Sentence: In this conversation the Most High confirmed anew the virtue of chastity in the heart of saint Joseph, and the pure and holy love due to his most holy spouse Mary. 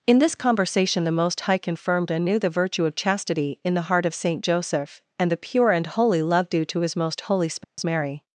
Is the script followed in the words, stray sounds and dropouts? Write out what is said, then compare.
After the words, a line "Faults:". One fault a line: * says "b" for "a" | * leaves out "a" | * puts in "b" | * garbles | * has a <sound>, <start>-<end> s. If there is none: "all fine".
In this conversation the Most High confirmed anew the virtue of chastity in the heart of saint Joseph, and the pure and holy love due to his most holy spouse Mary.
Faults:
* has a dropout, 7.6-7.8 s